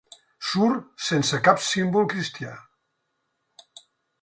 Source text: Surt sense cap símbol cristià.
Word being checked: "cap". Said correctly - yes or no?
yes